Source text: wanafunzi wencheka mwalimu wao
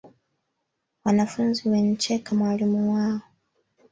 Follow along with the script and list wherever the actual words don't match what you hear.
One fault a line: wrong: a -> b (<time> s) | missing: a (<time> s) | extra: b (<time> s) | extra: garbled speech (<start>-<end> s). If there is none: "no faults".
no faults